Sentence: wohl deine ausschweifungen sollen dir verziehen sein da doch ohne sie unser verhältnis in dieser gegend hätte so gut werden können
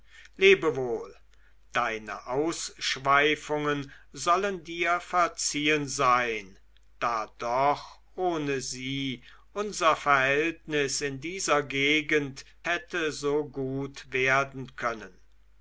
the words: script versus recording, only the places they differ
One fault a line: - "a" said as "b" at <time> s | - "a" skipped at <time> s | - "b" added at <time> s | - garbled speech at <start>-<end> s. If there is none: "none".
none